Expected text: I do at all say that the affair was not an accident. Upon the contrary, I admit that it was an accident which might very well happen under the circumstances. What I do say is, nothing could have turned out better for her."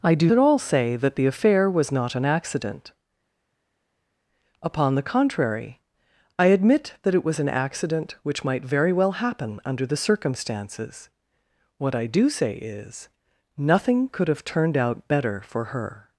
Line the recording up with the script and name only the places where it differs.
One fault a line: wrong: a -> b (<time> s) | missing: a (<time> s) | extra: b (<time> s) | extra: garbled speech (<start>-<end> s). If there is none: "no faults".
no faults